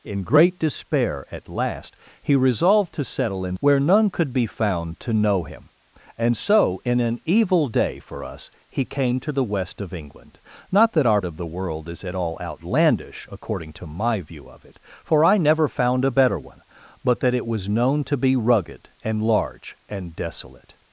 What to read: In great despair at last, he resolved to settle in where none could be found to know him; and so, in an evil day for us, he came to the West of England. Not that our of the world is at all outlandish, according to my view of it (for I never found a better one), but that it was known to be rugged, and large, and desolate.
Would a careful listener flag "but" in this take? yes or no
no